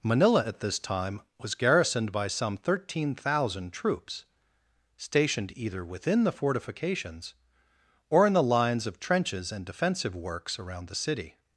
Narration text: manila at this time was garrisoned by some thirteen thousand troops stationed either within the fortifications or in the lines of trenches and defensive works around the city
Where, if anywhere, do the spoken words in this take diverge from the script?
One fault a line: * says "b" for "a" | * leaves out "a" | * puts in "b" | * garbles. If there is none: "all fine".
all fine